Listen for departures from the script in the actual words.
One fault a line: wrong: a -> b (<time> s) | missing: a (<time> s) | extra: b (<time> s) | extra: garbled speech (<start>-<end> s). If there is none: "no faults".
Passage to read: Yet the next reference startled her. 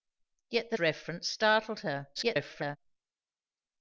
missing: next (0.8 s)
extra: garbled speech (2.1-2.8 s)